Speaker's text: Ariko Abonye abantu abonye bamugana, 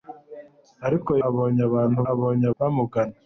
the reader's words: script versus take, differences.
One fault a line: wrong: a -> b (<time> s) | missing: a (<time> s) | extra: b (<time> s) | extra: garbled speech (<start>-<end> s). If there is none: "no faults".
no faults